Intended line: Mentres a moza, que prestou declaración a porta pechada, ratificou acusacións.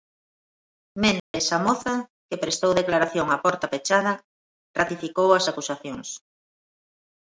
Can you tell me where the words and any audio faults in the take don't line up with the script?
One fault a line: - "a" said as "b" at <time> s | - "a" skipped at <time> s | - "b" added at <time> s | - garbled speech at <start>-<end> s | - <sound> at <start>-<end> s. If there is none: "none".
- dropout at 1.2-1.3 s
- "as" added at 5.3 s